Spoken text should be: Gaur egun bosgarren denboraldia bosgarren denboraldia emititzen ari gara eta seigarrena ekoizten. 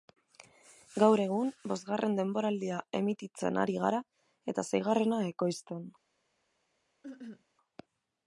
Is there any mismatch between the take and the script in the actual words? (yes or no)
yes